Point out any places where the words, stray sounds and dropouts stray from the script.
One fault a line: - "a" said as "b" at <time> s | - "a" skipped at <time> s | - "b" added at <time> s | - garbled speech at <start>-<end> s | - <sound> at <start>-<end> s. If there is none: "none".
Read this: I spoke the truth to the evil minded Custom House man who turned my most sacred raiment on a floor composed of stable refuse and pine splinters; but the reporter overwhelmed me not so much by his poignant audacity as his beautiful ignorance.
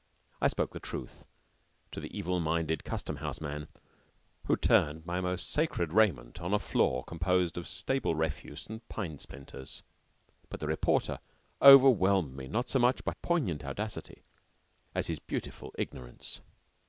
- "his" skipped at 13.1 s